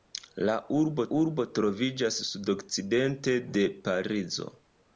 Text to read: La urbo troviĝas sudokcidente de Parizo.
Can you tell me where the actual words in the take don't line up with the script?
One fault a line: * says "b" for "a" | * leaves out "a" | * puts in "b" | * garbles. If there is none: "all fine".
* puts in "urbo"